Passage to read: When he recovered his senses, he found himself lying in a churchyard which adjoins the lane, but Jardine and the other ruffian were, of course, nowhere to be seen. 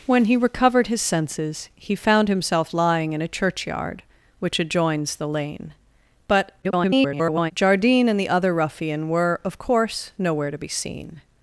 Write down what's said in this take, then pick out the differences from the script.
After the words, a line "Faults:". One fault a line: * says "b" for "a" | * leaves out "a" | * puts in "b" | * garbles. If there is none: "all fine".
When he recovered his senses, he found himself lying in a churchyard which adjoins the lane, but [garbled] Jardine and the other ruffian were, of course, nowhere to be seen.
Faults:
* garbles